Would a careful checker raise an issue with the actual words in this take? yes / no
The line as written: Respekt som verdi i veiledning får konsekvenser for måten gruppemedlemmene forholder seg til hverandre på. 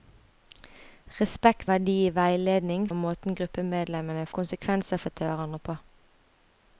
yes